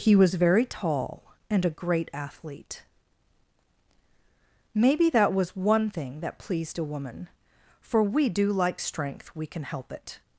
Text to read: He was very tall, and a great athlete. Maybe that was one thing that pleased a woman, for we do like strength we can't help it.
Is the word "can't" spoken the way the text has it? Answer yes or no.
no